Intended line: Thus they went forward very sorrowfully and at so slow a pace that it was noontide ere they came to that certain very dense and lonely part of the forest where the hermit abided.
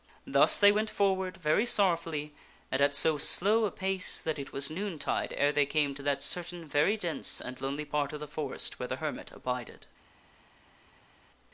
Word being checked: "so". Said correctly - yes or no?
yes